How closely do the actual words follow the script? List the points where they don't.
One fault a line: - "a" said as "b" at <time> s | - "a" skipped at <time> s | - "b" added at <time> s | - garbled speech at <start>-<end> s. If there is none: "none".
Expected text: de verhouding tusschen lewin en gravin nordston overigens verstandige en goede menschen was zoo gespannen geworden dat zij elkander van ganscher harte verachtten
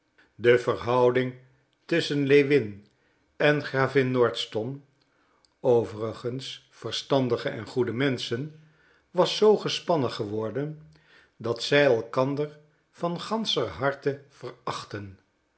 none